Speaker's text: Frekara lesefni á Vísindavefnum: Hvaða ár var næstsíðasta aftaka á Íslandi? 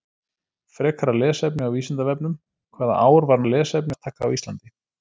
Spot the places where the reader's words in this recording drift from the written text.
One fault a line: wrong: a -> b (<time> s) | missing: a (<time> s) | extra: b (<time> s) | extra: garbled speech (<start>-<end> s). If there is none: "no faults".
wrong: næstsíðasta -> lesefni (3.5 s)